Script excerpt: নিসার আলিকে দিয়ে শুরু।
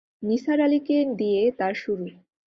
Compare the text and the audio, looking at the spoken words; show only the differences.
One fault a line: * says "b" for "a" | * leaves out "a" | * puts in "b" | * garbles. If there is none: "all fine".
* puts in "তার"